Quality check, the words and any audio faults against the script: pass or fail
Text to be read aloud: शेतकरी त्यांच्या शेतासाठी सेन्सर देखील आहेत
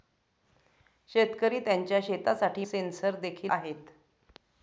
pass